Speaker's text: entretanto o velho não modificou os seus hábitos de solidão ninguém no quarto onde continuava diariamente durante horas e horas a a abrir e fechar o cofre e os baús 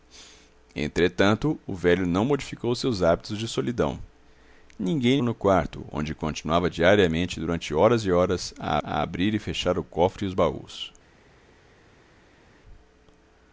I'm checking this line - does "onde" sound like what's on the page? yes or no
yes